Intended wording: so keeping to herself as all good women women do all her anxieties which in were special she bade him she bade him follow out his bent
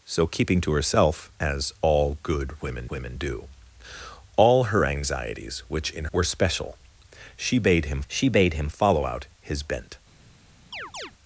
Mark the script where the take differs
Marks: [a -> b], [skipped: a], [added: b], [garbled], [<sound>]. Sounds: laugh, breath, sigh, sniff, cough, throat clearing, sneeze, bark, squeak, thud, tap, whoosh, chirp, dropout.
so keeping to herself as all good women women do all her anxieties which in were special she bade him she bade him follow out his bent [chirp]